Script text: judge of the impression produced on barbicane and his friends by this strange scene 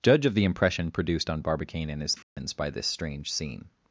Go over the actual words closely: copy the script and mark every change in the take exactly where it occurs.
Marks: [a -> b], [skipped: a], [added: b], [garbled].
judge of the impression produced on barbicane and his friends by this strange scene